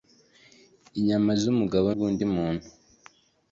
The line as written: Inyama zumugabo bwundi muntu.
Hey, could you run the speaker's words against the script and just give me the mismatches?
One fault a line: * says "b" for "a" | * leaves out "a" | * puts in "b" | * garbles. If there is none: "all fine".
all fine